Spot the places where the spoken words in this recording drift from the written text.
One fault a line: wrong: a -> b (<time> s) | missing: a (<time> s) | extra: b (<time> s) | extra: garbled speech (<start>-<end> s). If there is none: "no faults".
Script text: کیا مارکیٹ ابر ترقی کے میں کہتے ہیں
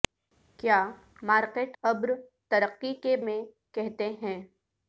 no faults